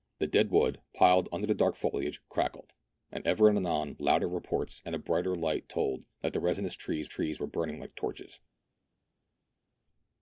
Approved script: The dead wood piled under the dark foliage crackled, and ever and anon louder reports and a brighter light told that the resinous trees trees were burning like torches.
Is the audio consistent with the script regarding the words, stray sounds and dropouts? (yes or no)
yes